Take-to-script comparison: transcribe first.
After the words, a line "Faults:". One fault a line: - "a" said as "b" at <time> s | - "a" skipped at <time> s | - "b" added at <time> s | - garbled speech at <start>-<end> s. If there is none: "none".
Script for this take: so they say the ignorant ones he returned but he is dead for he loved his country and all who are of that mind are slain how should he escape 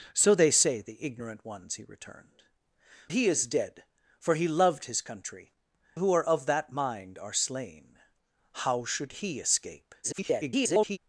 so they say the ignorant ones he returned he is dead for he loved his country who are of that mind are slain how should he escape [garbled]
Faults:
- "but" skipped at 2.5 s
- "and all" skipped at 5.5 s
- garbled speech at 10.0-11.0 s